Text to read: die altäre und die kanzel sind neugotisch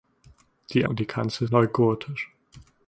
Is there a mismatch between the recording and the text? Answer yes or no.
yes